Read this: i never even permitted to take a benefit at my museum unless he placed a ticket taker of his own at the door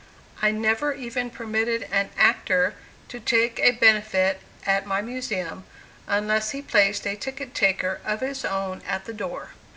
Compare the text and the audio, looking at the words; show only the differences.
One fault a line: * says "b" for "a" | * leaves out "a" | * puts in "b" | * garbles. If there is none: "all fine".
* puts in "an actor"